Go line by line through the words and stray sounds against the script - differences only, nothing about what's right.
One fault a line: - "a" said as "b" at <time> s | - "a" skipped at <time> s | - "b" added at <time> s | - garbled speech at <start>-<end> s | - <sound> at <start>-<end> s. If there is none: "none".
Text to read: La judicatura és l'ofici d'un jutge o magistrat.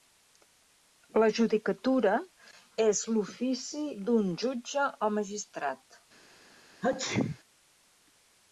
- sneeze at 6.8-7.4 s